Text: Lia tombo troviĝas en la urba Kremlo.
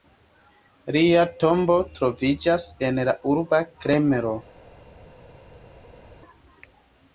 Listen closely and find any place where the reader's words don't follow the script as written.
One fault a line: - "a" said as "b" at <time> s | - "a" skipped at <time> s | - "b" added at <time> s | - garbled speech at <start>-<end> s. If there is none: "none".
none